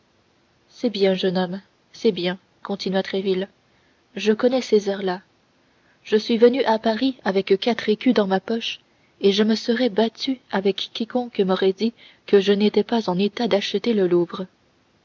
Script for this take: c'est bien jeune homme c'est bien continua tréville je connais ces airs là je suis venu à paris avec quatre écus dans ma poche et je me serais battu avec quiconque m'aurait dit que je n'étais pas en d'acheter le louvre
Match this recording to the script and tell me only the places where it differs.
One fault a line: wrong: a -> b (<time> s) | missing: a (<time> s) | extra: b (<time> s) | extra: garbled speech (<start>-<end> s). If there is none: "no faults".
extra: état (13.2 s)